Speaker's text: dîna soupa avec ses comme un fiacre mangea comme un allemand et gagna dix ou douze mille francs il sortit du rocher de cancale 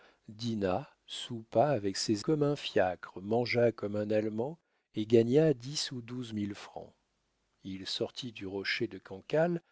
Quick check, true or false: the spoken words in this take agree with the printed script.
true